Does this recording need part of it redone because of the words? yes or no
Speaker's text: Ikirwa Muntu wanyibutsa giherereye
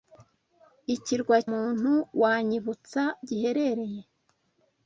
no